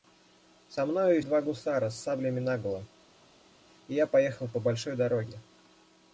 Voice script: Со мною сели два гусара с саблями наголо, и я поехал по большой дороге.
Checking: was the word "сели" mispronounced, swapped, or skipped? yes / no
yes